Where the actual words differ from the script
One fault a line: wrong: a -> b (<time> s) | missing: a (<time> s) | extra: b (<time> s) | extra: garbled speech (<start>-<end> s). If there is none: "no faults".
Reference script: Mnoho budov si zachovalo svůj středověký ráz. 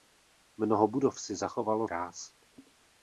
missing: svůj středověký (1.9 s)